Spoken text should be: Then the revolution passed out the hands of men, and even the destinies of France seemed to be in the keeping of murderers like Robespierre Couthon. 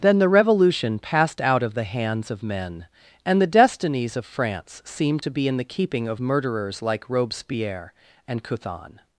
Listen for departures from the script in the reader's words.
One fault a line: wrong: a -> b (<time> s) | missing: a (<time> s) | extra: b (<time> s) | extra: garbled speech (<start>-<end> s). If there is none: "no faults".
extra: of (1.6 s)
missing: even (3.4 s)
extra: and (8.3 s)